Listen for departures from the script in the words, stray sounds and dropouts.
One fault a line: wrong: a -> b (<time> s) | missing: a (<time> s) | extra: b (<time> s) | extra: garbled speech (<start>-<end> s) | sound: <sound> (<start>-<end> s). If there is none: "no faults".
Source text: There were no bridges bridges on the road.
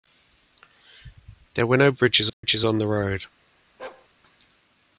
sound: dropout (2.3-2.4 s)
sound: bark (3.8-4.1 s)